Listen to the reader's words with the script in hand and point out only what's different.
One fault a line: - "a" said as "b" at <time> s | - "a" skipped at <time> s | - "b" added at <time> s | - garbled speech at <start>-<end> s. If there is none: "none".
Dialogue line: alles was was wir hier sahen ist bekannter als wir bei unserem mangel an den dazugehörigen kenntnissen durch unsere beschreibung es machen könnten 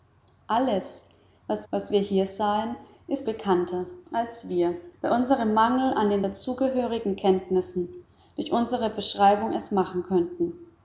none